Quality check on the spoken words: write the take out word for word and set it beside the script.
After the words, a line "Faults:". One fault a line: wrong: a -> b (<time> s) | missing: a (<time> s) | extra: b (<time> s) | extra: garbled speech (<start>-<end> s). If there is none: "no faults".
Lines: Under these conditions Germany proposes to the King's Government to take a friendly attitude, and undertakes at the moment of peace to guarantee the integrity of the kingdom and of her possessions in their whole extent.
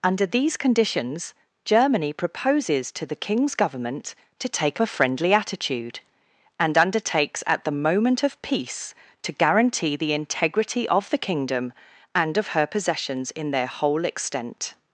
Under these conditions Germany proposes to the King's Government to take a friendly attitude, and undertakes at the moment of peace to guarantee the integrity of the kingdom and of her possessions in their whole extent.
Faults:
no faults